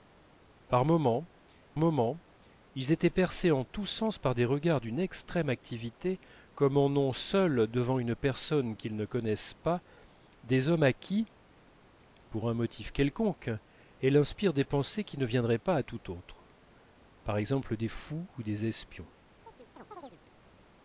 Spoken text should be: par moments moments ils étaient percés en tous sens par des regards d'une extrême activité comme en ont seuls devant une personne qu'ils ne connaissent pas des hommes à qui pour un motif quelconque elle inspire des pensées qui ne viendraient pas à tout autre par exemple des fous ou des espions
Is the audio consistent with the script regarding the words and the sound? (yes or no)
no